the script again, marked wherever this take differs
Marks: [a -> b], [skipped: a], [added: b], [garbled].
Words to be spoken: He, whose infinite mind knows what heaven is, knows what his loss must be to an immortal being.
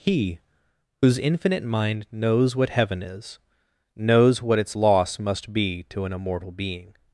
He, whose infinite mind knows what heaven is, knows what [his -> its] loss must be to an immortal being.